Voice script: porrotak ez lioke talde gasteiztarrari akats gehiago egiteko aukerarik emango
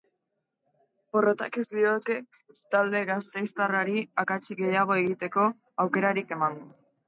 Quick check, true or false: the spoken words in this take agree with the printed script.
true